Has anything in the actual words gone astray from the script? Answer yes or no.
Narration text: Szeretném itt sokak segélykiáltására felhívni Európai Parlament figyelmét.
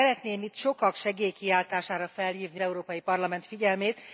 no